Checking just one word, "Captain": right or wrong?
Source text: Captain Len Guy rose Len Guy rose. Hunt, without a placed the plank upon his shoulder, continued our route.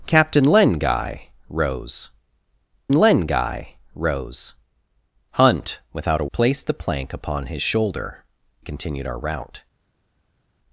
right